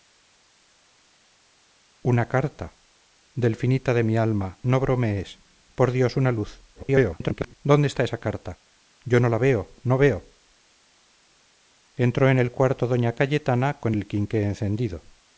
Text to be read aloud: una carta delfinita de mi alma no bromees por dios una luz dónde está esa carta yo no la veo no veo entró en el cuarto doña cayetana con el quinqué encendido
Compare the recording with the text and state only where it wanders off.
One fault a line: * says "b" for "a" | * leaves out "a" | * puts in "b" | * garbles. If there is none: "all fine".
* garbles